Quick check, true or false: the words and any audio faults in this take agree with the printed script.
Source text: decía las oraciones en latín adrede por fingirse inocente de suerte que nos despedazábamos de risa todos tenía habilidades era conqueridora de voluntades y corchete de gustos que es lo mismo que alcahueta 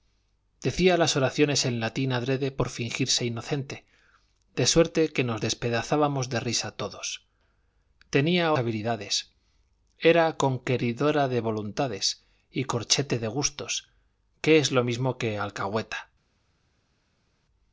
true